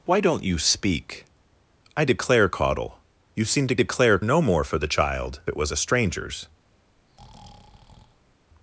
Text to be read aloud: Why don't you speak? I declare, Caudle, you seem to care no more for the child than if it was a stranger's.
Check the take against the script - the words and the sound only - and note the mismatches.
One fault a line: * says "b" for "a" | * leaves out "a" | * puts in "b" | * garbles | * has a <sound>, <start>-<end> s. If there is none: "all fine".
* says "declare" for "care"
* leaves out "than if"
* has a breath, 6.9-8.4 s